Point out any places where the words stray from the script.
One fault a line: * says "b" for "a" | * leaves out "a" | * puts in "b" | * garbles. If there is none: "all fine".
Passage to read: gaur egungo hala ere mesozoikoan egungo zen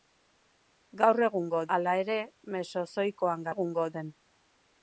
all fine